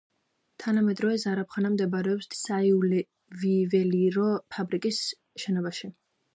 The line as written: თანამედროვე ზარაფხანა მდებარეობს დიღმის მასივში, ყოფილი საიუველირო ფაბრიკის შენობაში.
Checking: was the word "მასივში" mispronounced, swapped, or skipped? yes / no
yes